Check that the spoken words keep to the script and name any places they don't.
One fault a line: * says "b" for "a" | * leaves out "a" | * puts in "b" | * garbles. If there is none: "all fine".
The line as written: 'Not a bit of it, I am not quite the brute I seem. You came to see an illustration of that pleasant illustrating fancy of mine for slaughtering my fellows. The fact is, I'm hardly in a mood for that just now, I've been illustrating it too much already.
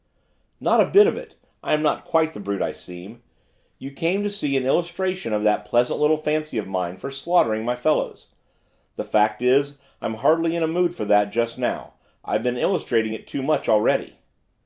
* says "little" for "illustrating"